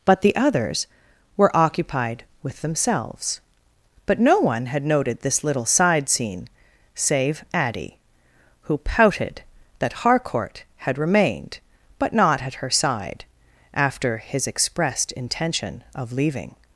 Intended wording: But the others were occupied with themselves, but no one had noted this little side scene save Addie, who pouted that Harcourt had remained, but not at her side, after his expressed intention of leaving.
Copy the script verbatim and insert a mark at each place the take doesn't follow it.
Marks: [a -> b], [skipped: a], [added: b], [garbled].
But the others were occupied with themselves, but no one had noted this little side scene save Addie, who pouted that Harcourt had remained, but not at her side, after his expressed intention of leaving.